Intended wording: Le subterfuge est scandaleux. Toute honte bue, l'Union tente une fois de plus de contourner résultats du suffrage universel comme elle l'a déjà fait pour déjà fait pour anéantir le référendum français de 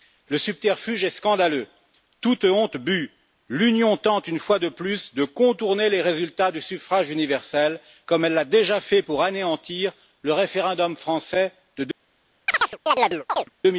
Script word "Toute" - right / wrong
right